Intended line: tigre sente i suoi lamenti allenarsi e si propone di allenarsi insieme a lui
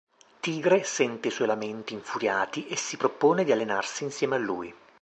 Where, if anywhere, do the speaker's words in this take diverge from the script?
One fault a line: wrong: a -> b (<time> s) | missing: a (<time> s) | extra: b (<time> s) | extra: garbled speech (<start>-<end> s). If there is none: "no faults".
wrong: allenarsi -> infuriati (1.9 s)